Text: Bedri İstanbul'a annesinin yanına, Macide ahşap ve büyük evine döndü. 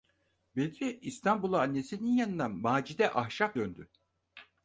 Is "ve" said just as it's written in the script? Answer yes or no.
no